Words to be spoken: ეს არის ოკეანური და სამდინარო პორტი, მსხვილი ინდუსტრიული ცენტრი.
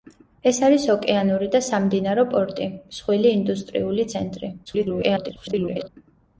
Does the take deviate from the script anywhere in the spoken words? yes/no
yes